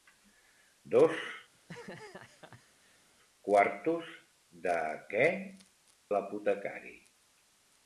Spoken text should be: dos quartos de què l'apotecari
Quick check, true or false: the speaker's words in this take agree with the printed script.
true